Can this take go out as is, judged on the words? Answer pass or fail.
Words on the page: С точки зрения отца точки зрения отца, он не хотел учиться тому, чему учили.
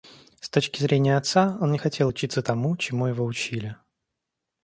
fail